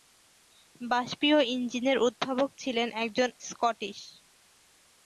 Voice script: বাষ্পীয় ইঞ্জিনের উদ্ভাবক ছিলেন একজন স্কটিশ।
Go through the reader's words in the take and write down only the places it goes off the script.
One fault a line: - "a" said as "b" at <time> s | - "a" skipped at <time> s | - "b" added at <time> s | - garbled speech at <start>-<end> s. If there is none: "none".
none